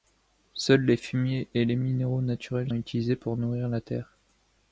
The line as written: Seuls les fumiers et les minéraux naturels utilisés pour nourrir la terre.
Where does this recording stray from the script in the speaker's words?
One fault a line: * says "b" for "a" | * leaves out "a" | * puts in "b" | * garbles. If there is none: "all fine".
all fine